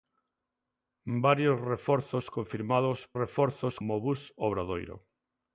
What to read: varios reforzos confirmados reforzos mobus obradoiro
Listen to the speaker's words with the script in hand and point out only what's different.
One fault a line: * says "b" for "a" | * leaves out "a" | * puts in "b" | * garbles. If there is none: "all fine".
all fine